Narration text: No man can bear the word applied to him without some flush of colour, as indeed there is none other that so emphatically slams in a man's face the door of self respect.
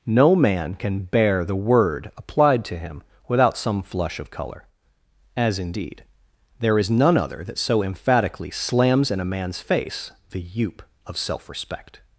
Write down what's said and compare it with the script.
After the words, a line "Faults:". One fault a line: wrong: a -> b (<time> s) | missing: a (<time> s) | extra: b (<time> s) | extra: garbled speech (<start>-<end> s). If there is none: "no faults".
No man can bear the word applied to him without some flush of colour, as indeed there is none other that so emphatically slams in a man's face the youp of self respect.
Faults:
wrong: door -> youp (10.4 s)